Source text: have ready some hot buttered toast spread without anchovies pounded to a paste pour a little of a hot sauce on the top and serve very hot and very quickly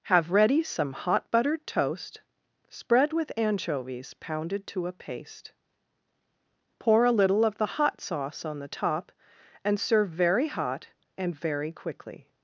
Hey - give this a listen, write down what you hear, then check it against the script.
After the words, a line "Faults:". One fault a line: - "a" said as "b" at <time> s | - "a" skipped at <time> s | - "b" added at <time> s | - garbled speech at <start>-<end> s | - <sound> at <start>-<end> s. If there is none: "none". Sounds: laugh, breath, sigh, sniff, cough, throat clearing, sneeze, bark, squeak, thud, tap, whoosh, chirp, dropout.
have ready some hot buttered toast spread with anchovies pounded to a paste pour a little of the hot sauce on the top and serve very hot and very quickly
Faults:
- "without" said as "with" at 3.1 s
- "a" said as "the" at 7.6 s